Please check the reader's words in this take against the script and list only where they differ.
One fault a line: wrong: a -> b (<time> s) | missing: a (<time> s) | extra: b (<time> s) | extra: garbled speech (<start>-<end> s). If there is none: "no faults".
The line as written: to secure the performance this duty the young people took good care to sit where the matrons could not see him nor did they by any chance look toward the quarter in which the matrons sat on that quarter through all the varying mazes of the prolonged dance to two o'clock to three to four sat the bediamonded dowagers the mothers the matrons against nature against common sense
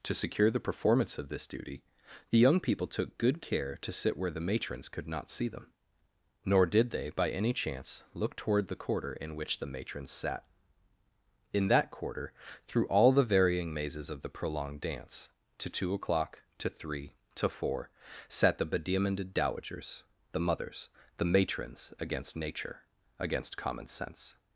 extra: of (1.2 s)
wrong: him -> them (5.5 s)
wrong: on -> in (11.5 s)